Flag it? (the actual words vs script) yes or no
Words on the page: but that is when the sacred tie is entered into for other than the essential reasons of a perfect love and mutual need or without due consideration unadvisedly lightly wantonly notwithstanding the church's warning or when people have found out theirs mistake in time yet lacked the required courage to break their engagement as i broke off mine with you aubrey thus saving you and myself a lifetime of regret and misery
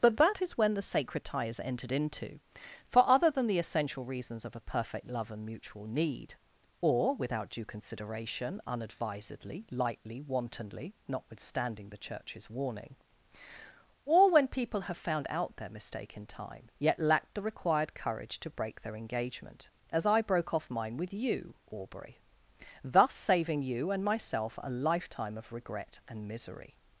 yes